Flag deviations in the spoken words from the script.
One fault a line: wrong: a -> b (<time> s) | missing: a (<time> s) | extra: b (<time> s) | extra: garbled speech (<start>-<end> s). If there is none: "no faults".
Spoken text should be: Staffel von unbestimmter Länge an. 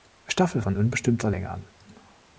no faults